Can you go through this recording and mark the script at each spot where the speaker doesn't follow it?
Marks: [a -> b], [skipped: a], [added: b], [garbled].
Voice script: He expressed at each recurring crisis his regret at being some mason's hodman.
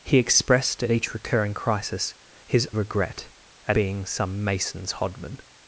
He expressed at each recurring crisis his regret at being some mason's hodman.